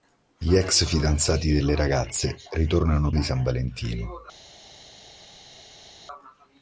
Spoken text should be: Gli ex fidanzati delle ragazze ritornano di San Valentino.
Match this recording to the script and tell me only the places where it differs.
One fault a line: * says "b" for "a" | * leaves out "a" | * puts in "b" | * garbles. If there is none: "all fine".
all fine